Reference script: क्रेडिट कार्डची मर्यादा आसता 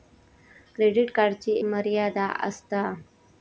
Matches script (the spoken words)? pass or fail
pass